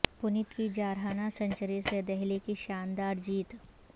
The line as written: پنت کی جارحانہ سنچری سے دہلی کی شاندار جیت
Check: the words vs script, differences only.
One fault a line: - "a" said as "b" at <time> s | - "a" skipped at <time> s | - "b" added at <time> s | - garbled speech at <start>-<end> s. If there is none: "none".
none